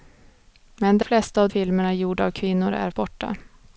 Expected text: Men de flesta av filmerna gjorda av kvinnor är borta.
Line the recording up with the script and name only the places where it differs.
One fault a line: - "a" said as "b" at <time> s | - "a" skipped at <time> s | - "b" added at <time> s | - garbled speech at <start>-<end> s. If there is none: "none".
none